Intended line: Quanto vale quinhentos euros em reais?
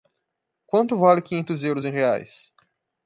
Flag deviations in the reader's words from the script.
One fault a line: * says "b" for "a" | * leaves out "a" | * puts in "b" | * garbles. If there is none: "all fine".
all fine